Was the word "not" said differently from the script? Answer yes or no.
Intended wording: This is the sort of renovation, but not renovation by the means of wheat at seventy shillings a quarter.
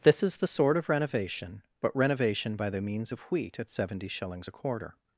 yes